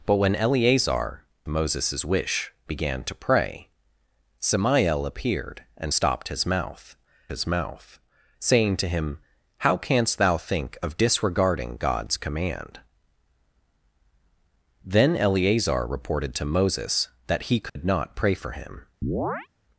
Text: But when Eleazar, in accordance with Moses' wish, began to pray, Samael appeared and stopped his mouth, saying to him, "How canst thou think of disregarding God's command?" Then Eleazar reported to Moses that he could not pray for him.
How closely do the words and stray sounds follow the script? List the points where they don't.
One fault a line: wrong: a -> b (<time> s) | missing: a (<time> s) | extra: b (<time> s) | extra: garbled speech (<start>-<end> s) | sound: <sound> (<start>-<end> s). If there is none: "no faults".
missing: in accordance with (1.2 s)
extra: his mouth (7.3 s)
sound: dropout (17.7-17.8 s)
sound: chirp (19.0-19.5 s)